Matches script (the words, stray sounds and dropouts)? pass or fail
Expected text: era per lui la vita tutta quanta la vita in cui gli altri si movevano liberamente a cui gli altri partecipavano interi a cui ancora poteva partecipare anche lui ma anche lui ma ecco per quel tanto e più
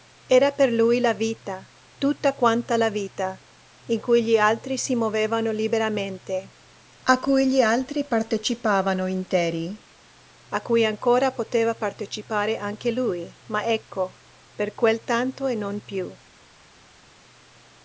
fail